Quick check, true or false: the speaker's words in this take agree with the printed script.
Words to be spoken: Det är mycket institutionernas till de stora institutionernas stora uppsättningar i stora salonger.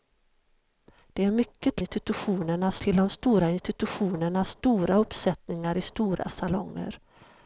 true